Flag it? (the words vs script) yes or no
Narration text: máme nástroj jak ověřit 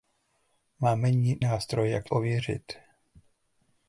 no